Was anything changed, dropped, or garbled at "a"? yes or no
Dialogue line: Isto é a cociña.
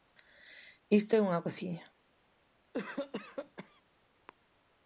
yes